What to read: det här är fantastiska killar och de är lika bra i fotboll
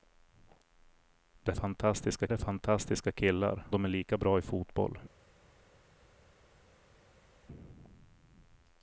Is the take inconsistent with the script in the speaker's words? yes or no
yes